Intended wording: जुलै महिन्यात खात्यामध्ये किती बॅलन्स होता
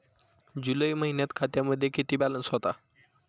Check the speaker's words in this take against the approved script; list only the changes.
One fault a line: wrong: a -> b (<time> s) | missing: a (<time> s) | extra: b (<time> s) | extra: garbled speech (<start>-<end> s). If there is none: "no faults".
no faults